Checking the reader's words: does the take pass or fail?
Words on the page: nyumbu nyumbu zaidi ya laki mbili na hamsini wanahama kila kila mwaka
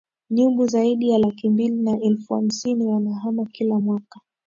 fail